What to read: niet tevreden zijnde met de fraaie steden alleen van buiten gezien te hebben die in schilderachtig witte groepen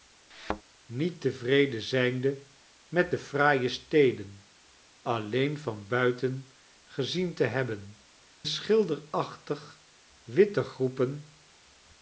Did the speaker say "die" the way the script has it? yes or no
no